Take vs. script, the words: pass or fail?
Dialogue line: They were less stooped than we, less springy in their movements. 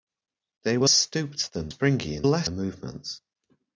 fail